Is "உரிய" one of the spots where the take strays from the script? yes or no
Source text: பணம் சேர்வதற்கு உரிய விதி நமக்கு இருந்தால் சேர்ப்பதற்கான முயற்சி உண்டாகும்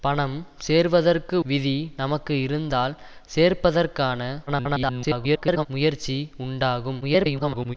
yes